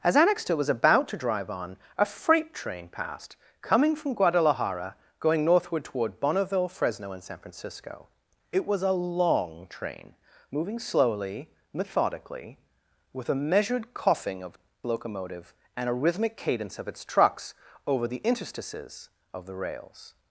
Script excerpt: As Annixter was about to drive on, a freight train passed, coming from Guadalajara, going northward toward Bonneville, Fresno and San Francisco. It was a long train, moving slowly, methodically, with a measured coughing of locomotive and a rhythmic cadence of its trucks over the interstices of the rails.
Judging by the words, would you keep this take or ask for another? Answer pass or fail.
pass